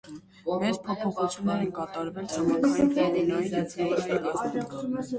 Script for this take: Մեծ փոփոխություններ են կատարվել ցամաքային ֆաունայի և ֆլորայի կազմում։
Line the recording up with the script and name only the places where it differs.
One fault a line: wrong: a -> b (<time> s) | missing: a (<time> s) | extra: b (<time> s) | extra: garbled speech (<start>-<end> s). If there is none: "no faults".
no faults